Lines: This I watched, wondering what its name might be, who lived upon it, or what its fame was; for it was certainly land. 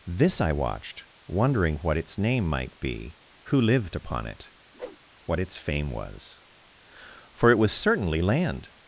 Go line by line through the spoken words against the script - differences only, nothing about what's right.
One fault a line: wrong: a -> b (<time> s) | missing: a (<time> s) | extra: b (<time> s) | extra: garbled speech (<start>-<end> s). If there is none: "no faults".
missing: or (4.5 s)